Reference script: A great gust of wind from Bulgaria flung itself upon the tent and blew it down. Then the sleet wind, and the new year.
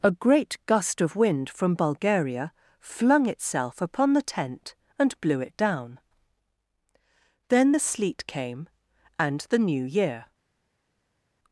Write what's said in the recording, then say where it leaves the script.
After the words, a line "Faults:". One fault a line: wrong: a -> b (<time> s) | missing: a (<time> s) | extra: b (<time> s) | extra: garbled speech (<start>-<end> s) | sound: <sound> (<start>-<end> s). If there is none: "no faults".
A great gust of wind from Bulgaria flung itself upon the tent and blew it down. Then the sleet came, and the new year.
Faults:
wrong: wind -> came (8.2 s)